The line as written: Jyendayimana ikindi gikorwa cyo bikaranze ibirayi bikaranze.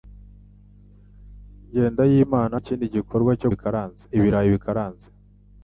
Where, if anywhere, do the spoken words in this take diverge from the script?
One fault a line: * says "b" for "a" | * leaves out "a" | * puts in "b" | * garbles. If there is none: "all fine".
all fine